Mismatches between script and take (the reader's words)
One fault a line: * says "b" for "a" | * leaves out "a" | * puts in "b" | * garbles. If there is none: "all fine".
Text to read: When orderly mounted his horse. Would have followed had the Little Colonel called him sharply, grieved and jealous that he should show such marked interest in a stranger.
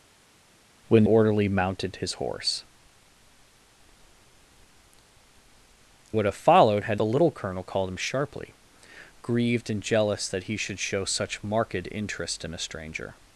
all fine